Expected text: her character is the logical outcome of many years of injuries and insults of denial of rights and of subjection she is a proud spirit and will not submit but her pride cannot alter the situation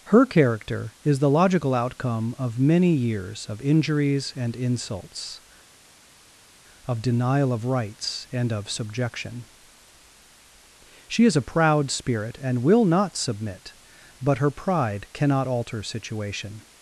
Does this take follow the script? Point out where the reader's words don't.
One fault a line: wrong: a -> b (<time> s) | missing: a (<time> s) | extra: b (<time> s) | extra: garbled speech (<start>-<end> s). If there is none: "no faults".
missing: the (15.8 s)